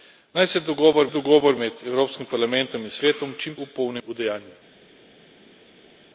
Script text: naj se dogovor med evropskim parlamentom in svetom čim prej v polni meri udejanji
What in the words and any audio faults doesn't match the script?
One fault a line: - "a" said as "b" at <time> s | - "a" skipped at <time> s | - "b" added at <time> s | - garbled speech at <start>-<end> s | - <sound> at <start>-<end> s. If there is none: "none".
- "dogovor" added at 1.1 s
- "prej" skipped at 3.5 s
- "meri" skipped at 4.0 s